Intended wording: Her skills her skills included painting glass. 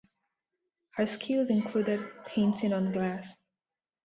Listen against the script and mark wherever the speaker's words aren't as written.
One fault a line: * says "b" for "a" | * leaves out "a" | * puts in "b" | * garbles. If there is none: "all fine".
* leaves out "her skills"
* puts in "on"